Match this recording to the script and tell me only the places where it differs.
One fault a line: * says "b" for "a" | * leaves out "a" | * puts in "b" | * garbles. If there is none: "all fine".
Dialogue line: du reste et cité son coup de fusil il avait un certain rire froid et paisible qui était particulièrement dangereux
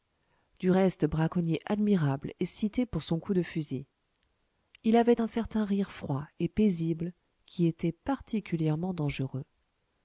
* puts in "braconnier admirable"
* puts in "pour"